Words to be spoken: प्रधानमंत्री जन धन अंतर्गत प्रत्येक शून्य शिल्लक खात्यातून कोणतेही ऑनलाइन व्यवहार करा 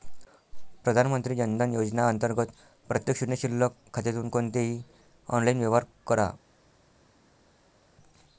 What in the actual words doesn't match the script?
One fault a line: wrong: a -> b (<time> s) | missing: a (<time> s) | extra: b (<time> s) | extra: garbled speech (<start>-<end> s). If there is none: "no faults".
extra: योजना (1.7 s)